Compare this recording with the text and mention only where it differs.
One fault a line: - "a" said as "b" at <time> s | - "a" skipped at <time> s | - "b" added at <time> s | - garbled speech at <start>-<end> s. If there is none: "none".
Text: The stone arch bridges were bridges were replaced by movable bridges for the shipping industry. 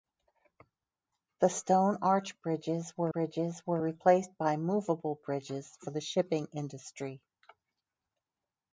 none